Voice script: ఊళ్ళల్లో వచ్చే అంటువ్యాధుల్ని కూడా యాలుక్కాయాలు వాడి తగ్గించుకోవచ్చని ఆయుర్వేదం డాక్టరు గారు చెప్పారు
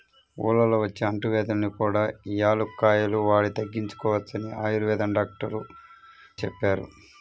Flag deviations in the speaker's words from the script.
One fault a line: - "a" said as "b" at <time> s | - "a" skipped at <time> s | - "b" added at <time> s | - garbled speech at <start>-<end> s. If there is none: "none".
- "గారు" skipped at 5.6 s